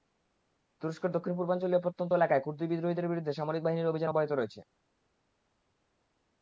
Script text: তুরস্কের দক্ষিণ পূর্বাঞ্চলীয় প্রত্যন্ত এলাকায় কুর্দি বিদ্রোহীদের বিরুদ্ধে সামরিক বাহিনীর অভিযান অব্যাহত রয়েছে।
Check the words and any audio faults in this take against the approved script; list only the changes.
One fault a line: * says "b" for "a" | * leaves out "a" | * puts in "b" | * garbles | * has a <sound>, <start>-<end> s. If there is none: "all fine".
all fine